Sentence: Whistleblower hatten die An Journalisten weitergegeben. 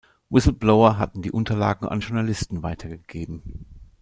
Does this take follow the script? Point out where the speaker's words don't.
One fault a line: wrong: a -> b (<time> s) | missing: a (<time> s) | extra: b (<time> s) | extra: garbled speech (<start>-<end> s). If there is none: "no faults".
extra: Unterlagen (1.3 s)